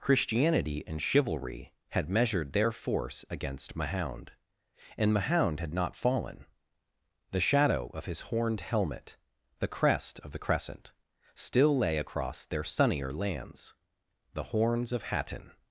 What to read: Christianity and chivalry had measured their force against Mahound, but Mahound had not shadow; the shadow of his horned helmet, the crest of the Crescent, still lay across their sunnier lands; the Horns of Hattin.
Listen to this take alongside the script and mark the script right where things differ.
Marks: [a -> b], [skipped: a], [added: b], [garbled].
Christianity and chivalry had measured their force against Mahound, [but -> and] Mahound had not [shadow; -> fallen] the shadow of his horned helmet, the crest of the Crescent, still lay across their sunnier lands; the Horns of Hattin.